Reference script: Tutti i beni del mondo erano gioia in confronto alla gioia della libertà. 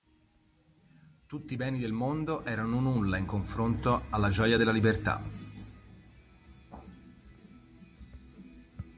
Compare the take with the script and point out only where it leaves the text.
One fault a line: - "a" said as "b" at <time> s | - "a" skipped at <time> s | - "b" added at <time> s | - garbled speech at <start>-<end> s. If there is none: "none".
- "gioia" said as "nulla" at 2.8 s